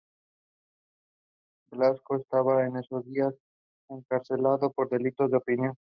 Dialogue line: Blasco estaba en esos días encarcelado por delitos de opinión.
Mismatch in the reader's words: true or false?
false